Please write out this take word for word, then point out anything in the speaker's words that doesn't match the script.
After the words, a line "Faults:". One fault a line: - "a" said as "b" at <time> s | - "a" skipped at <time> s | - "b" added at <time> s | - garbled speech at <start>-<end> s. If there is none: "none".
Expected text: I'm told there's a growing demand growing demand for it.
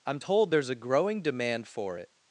I'm told there's a growing demand for it.
Faults:
- "growing demand" skipped at 1.7 s